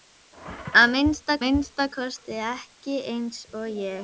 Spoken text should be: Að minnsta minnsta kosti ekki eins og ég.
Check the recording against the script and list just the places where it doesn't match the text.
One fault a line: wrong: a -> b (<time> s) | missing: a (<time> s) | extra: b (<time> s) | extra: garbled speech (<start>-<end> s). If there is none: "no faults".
no faults